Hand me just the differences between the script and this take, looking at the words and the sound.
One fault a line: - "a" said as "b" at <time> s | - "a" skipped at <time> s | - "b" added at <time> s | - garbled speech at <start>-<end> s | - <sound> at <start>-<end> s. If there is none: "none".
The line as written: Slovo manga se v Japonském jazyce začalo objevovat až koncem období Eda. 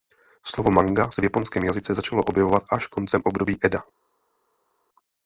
none